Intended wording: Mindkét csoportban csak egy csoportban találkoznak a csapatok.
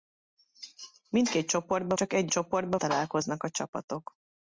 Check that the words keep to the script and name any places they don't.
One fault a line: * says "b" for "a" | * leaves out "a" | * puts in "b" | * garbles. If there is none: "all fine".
all fine